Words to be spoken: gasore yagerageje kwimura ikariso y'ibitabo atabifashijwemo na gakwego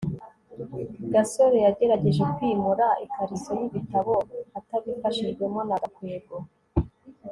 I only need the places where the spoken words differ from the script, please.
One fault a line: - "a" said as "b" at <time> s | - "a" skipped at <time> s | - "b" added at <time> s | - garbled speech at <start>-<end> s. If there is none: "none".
none